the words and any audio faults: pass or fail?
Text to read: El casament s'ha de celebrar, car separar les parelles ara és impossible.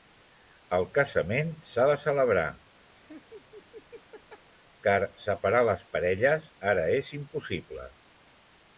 fail